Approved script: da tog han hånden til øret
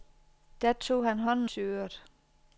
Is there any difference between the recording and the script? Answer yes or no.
no